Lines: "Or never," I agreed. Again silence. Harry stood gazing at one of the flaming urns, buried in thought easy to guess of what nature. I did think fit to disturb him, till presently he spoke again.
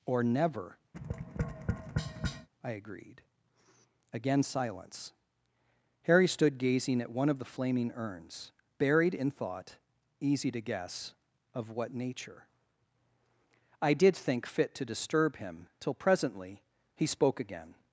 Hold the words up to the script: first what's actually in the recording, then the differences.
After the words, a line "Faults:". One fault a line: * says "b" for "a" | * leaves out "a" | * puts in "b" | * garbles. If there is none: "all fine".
"Or never," I agreed. Again silence. Harry stood gazing at one of the flaming urns, buried in thought easy to guess of what nature. I did think fit to disturb him, till presently he spoke again.
Faults:
all fine